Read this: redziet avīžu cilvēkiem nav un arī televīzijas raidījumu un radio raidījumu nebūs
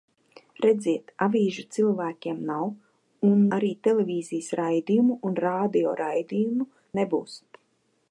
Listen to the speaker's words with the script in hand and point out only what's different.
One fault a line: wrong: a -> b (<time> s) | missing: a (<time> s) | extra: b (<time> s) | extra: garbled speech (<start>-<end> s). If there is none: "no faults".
no faults